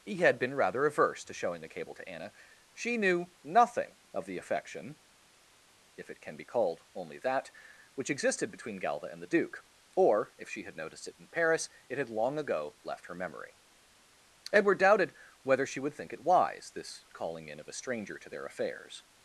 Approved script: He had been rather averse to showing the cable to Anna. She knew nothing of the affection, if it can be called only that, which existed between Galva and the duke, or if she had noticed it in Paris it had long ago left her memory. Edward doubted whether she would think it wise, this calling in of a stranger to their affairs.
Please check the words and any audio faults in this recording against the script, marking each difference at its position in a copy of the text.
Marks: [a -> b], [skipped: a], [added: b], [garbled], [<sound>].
He had been rather averse to showing the cable to Anna. She knew nothing of the affection, if it can be called only that, which existed between Galva and the duke, or if she had noticed it in Paris it had long ago left her memory. Edward doubted whether she would think it wise, this calling in of a stranger to their affairs.